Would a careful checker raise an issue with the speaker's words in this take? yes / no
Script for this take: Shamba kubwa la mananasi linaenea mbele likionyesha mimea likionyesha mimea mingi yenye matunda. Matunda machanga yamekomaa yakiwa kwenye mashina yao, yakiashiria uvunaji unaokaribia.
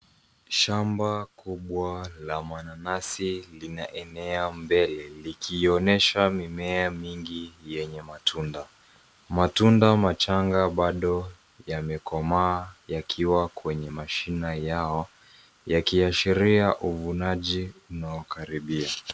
yes